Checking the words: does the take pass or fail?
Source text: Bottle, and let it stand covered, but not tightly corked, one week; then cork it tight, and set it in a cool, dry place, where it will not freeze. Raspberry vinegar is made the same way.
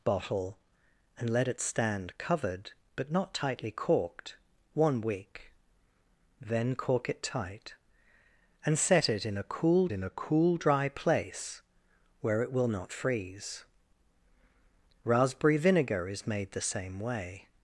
fail